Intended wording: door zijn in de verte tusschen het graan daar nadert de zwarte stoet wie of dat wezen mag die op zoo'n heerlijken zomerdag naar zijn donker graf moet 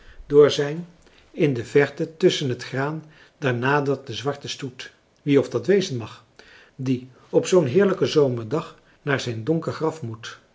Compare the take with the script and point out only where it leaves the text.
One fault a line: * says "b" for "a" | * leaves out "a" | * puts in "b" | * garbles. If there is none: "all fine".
all fine